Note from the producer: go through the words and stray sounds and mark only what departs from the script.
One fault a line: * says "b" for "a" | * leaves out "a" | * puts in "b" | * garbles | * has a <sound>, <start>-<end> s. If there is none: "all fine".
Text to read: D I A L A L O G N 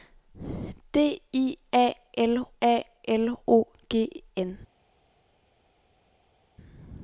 all fine